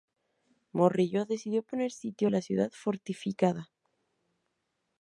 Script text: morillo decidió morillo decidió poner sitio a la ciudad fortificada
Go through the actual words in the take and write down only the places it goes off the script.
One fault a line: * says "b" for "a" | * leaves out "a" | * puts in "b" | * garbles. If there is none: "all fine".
* leaves out "morillo decidió"